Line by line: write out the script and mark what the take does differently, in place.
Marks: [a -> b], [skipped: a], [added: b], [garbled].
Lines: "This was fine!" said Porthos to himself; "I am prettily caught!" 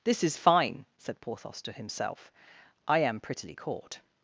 "This [was -> is] fine!" said Porthos to himself; "I am prettily caught!"